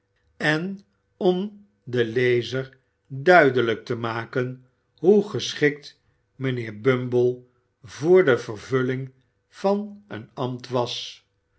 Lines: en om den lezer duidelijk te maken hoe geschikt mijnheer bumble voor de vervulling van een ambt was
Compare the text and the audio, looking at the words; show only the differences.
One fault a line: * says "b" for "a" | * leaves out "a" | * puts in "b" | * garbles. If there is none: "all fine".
all fine